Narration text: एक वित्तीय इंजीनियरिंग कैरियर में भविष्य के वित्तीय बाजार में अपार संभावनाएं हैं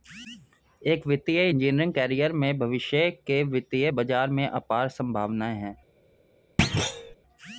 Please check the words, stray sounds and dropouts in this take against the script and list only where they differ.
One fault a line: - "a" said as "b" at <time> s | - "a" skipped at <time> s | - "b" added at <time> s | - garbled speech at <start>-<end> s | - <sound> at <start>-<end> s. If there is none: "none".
- thud at 6.6-7.1 s